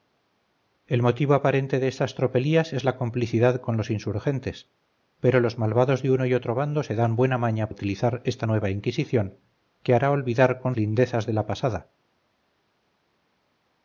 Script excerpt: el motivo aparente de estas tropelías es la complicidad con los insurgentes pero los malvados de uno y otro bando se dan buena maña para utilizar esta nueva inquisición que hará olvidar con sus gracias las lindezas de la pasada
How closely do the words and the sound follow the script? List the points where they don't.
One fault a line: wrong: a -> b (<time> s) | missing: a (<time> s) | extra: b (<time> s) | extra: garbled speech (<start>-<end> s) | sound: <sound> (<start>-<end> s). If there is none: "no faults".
missing: para (7.7 s)
missing: sus gracias las (10.8 s)